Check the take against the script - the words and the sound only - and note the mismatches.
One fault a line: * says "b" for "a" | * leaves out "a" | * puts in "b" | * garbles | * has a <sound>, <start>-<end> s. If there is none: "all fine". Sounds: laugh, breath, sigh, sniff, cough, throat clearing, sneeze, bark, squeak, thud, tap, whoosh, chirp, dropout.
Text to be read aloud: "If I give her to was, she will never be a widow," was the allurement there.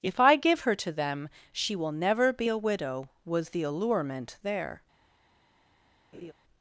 * says "them" for "was"
* has a laugh, 6.1-6.3 s